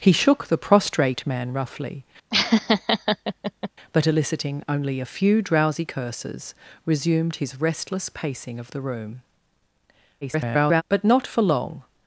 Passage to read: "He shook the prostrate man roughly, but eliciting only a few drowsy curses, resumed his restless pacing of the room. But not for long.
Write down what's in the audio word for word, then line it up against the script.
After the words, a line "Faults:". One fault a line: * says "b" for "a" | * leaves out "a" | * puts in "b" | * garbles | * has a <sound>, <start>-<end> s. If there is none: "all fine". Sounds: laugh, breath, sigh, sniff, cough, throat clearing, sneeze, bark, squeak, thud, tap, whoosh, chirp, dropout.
"He shook the prostrate man roughly, but eliciting only a few drowsy curses, resumed his restless pacing of the room. [garbled] But not for long.
Faults:
* has a laugh, 2.3-3.7 s
* garbles